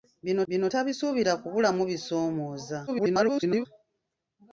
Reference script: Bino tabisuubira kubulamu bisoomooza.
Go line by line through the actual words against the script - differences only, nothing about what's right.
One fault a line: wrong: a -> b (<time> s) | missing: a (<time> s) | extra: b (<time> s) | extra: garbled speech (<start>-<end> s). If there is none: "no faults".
extra: bino (0.5 s)
extra: garbled speech (2.9-3.7 s)